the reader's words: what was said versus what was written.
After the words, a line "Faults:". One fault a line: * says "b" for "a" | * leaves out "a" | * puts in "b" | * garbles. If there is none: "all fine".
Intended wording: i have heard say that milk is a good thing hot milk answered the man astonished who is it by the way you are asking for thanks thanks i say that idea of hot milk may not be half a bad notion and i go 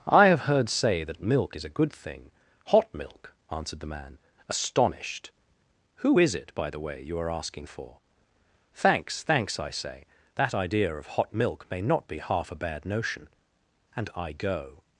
i have heard say that milk is a good thing hot milk answered the man astonished who is it by the way you are asking for thanks thanks i say that idea of hot milk may not be half a bad notion and i go
Faults:
all fine